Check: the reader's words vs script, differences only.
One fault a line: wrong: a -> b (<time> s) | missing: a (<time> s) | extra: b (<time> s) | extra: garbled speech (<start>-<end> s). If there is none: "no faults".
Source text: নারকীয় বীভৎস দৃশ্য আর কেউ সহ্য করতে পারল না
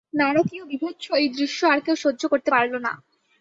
extra: এই (1.1 s)